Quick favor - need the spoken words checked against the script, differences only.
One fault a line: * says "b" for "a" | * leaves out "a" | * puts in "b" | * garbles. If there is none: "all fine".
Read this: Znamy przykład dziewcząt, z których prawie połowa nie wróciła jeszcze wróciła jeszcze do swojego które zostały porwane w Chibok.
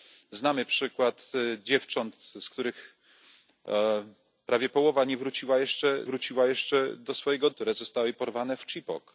all fine